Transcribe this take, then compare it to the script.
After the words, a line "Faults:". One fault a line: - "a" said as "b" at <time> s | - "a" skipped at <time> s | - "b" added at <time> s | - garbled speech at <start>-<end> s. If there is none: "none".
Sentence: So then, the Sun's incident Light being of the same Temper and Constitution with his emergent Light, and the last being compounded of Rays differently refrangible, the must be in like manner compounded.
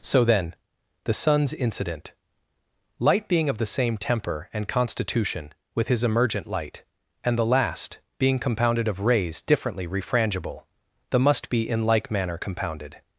So then, the Sun's incident Light being of the same Temper and Constitution with his emergent Light, and the last being compounded of Rays differently refrangible, the must be in like manner compounded.
Faults:
none